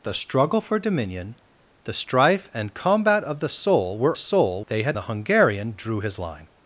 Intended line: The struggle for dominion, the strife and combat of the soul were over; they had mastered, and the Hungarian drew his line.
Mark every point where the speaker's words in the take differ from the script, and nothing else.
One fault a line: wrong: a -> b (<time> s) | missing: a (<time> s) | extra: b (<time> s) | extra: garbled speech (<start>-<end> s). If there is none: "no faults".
wrong: over -> soul (4.1 s)
missing: mastered and (5.0 s)